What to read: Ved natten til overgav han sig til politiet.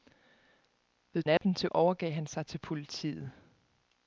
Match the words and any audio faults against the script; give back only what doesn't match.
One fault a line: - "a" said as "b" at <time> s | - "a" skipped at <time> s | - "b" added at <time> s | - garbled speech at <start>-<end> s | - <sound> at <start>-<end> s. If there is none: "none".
- dropout at 1.4-1.4 s